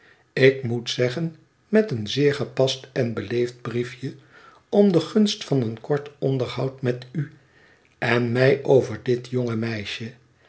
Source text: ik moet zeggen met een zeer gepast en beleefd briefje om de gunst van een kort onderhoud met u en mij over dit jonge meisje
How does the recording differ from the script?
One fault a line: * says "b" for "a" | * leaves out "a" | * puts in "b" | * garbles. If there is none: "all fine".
all fine